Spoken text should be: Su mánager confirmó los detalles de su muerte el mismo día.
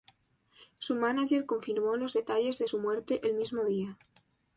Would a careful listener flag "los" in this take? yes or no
no